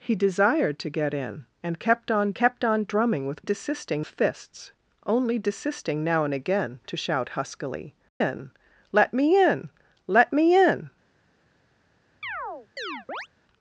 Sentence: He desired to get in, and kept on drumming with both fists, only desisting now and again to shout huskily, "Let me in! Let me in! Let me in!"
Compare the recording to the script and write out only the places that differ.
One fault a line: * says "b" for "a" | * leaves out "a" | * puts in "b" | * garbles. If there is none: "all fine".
* puts in "kept on"
* says "desisting" for "both"
* leaves out "Let me"